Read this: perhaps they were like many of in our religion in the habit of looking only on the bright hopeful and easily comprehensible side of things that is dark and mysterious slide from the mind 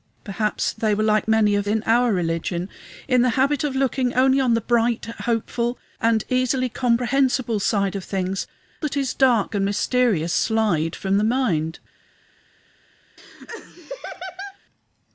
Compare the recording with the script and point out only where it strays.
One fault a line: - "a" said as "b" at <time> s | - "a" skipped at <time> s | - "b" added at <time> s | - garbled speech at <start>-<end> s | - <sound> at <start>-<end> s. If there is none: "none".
- laugh at 13.2-14.6 s